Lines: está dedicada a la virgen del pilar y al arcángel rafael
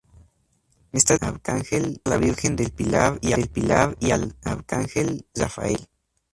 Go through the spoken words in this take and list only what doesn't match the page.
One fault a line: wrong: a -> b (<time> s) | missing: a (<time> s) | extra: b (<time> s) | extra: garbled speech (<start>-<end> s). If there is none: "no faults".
wrong: dedicada -> arcángel (1.2 s)
extra: del pilar y (3.3 s)